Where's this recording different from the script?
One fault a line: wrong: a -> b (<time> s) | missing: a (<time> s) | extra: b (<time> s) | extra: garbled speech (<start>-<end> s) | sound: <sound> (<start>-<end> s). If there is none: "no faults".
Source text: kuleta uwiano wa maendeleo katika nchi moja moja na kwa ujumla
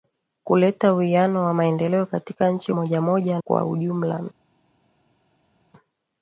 missing: na (3.4 s)